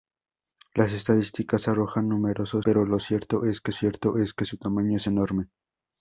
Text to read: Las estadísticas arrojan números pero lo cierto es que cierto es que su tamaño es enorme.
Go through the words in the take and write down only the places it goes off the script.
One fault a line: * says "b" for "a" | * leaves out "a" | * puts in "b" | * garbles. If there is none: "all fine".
all fine